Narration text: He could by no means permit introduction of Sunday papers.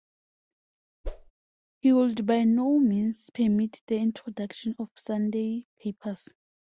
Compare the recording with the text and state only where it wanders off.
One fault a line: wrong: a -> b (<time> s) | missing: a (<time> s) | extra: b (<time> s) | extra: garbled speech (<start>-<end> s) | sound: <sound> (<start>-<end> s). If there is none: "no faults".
sound: whoosh (1.0-1.3 s)
wrong: could -> would (1.9 s)
extra: the (3.9 s)